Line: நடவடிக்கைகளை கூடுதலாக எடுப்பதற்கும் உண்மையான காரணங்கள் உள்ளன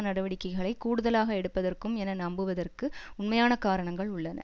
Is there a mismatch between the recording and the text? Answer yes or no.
yes